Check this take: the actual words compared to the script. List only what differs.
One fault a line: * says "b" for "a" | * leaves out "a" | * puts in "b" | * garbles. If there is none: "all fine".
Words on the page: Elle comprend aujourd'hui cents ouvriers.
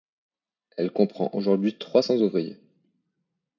* puts in "trois"